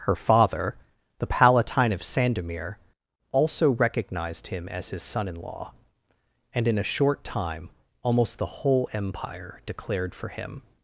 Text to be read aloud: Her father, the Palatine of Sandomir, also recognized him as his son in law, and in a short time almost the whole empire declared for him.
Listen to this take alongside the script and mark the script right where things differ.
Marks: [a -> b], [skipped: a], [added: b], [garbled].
Her father, the Palatine of Sandomir, also recognized him as his son in law, and in a short time almost the whole empire declared for him.